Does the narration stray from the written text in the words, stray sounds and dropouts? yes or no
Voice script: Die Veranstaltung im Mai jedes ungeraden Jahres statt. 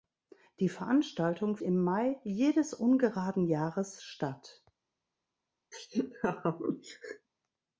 yes